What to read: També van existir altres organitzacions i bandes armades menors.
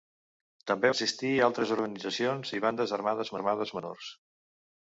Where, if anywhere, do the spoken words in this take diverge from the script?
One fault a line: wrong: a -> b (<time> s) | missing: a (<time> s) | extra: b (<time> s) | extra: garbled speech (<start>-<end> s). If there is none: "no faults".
missing: van (0.9 s)
extra: armades (3.4 s)